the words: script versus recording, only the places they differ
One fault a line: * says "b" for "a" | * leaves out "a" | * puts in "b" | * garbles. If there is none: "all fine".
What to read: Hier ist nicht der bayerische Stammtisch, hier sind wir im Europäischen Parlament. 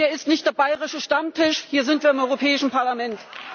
all fine